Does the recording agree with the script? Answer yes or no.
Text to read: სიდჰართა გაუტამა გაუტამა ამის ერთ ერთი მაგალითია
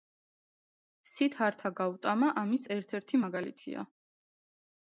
no